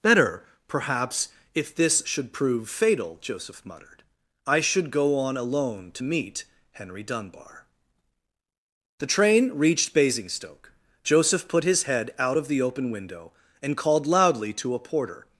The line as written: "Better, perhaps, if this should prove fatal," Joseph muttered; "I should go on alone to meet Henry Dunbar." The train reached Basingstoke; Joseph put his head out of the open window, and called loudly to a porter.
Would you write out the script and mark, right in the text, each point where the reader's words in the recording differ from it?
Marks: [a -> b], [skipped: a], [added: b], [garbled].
"Better, perhaps, if this should prove fatal," Joseph muttered; "I should go on alone to meet Henry Dunbar." The train reached Basingstoke; Joseph put his head out of the open window, and called loudly to a porter.